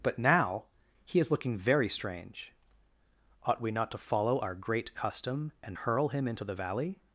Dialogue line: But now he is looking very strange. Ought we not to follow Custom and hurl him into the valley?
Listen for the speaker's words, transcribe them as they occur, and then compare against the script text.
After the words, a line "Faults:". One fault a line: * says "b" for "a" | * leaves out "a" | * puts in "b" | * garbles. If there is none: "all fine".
But now he is looking very strange. Ought we not to follow our Great Custom and hurl him into the valley?
Faults:
* puts in "our Great"